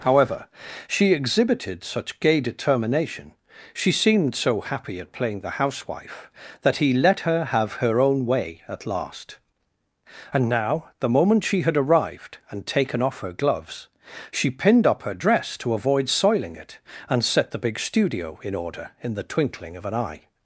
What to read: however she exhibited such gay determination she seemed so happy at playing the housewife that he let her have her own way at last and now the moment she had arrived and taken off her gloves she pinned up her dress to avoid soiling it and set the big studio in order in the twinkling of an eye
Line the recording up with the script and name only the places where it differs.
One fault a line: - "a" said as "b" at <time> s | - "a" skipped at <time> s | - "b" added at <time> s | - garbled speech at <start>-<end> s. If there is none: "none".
none